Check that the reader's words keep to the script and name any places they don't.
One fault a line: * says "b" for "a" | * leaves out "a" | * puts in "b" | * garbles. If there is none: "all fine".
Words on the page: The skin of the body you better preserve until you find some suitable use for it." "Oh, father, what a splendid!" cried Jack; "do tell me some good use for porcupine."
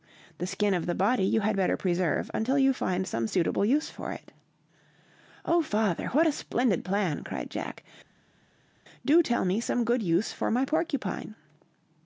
* puts in "had"
* puts in "plan"
* puts in "my"